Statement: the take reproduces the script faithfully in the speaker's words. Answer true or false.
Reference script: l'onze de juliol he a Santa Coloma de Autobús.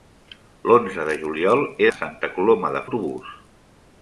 true